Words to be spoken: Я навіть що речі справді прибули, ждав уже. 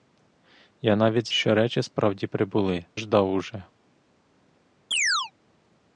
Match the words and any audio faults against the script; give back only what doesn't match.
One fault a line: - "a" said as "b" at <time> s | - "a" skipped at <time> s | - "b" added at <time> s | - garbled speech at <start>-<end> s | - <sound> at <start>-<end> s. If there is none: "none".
- chirp at 4.9-5.3 s